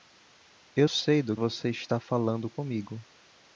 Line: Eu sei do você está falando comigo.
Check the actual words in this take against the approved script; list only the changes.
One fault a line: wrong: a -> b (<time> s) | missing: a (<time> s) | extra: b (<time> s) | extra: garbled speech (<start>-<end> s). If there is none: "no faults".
no faults